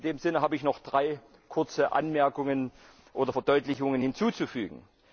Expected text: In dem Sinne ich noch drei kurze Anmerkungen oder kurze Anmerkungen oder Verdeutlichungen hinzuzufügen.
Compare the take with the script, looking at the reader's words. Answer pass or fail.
fail